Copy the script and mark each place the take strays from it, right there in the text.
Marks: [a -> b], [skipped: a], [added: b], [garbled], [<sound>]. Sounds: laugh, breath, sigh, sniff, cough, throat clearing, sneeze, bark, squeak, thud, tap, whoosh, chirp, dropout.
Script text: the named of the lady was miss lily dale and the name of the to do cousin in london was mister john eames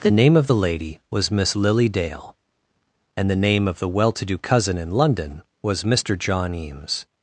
the [named -> name] of the lady was miss lily dale and the name of the [added: well] to do cousin in london was mister john eames